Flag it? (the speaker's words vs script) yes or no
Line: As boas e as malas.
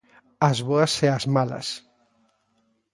no